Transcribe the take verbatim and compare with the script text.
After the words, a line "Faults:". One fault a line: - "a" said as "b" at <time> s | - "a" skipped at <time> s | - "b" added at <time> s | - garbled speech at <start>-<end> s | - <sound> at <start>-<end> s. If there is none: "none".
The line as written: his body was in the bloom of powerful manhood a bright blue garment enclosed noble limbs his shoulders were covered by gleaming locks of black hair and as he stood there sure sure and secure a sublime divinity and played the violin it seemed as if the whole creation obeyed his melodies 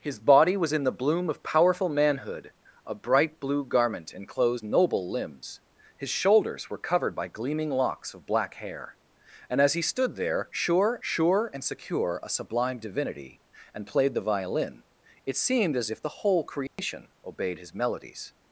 his body was in the bloom of powerful manhood a bright blue garment enclosed noble limbs his shoulders were covered by gleaming locks of black hair and as he stood there sure sure and secure a sublime divinity and played the violin it seemed as if the whole creation obeyed his melodies
Faults:
- dropout at 16.7-16.8 s